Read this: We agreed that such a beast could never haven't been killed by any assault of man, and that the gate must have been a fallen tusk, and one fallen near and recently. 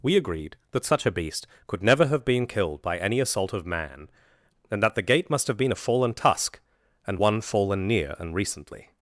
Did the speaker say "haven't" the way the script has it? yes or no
no